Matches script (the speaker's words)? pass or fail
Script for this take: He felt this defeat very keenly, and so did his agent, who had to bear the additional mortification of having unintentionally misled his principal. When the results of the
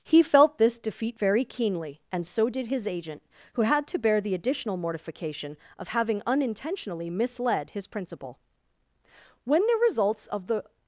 pass